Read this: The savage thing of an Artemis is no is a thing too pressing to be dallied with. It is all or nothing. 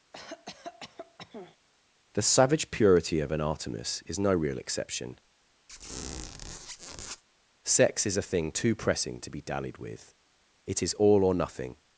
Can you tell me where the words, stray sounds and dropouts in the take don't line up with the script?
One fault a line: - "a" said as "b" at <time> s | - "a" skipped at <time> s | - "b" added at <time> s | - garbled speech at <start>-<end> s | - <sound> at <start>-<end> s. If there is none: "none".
- cough at 0.1-1.6 s
- "thing" said as "purity" at 2.7 s
- "real exception Sex" added at 4.3 s
- squeak at 5.7-7.2 s